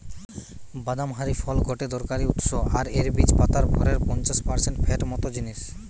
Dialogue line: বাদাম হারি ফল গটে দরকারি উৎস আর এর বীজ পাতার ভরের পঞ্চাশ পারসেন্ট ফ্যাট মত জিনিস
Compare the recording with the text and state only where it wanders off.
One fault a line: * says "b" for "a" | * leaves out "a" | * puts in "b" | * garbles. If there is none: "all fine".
all fine